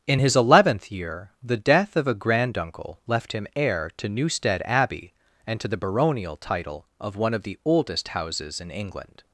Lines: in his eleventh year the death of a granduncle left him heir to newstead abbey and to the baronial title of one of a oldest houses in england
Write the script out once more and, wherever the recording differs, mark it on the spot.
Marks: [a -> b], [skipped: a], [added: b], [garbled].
in his eleventh year the death of a granduncle left him heir to newstead abbey and to the baronial title of one of [a -> the] oldest houses in england